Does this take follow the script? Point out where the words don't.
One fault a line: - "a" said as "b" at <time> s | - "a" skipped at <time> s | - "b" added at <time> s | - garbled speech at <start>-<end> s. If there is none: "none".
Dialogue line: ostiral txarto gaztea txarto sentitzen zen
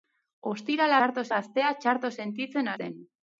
none